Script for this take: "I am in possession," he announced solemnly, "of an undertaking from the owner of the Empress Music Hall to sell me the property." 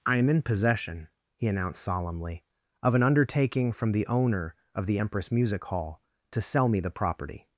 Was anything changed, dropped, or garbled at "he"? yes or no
no